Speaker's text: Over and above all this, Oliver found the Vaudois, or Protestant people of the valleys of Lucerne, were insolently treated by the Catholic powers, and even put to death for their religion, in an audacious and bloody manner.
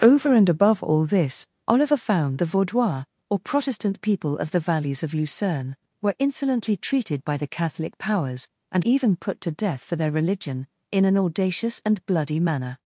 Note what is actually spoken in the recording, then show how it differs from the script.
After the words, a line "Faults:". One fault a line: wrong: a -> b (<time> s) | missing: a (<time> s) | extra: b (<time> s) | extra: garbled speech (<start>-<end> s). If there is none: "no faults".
Over and above all this, Oliver found the Vaudois, or Protestant people of the valleys of Lucerne, were insolently treated by the Catholic powers, and even put to death for their religion, in an audacious and bloody manner.
Faults:
no faults